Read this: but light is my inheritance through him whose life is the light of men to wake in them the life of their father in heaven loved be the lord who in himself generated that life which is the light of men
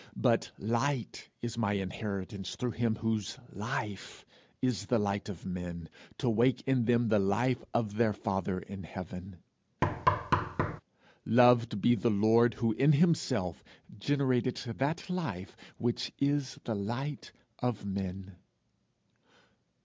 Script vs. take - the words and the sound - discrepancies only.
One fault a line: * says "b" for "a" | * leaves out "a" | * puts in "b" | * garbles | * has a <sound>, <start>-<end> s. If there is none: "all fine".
* has a thud, 9.8-10.8 s